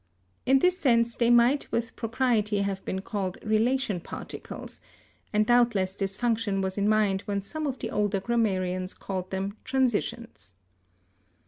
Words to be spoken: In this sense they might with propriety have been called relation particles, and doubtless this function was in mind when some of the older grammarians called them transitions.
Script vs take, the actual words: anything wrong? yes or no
no